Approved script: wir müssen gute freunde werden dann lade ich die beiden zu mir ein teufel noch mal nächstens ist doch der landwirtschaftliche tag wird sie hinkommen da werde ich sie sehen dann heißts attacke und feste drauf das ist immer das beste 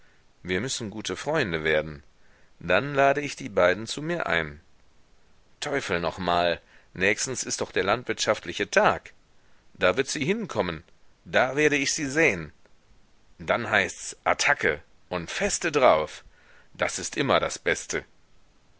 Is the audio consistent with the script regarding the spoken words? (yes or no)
no